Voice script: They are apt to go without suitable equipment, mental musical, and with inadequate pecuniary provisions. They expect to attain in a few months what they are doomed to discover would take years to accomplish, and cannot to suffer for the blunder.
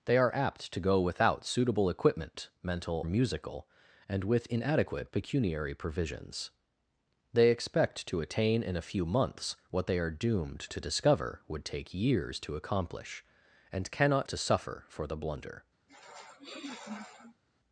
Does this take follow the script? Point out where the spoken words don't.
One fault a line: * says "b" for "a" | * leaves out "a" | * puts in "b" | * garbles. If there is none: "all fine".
all fine